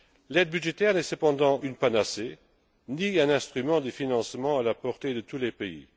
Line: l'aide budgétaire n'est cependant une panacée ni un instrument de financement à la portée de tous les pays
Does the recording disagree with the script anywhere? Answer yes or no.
no